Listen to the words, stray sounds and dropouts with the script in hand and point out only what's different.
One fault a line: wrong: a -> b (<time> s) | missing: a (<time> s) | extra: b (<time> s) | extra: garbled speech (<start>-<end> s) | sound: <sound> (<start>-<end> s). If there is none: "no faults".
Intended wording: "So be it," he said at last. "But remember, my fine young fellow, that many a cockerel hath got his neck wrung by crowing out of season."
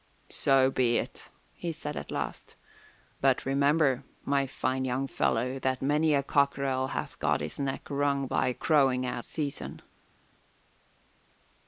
missing: of (9.2 s)